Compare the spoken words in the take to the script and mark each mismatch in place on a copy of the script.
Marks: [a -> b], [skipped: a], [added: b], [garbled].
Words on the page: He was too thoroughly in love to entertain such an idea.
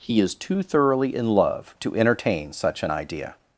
He [was -> is] too thoroughly in love to entertain such an idea.